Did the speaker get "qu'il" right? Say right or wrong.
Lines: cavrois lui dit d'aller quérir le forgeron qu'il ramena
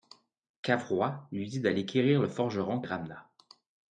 wrong